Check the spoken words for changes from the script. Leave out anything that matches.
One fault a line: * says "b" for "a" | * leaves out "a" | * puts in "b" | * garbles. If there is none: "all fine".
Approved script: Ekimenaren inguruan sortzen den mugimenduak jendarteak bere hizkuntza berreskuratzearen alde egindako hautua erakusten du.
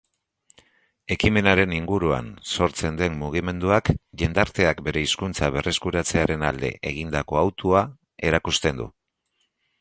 all fine